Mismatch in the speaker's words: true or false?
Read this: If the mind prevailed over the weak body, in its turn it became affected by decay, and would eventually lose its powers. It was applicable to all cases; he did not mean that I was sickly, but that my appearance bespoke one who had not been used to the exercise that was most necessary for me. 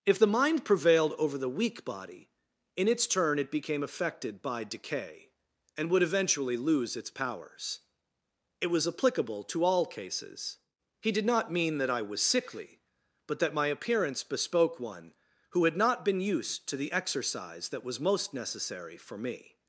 false